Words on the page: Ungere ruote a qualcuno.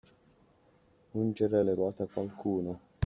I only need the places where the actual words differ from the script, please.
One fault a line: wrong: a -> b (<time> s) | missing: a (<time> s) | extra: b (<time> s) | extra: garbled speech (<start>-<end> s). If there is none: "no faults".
extra: le (1.6 s)